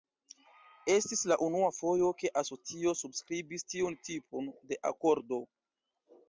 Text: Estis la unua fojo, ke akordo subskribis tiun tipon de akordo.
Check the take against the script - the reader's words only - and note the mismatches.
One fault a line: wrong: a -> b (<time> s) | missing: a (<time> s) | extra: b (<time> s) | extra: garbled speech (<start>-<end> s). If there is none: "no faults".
wrong: akordo -> asocio (2.4 s)